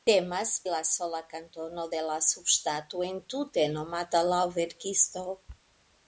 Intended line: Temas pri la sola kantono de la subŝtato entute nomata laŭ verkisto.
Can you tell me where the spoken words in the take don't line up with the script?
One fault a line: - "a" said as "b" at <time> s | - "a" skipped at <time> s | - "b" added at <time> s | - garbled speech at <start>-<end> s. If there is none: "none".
- "pri" skipped at 0.5 s